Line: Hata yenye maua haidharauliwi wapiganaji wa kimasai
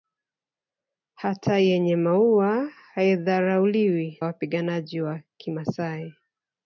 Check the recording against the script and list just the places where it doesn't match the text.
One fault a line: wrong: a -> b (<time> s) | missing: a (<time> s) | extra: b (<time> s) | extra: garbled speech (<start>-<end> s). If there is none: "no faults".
no faults